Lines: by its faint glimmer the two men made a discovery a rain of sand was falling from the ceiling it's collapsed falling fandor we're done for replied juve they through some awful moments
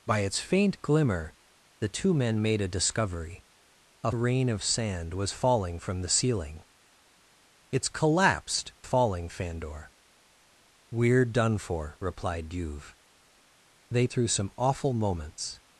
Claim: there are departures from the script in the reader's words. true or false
false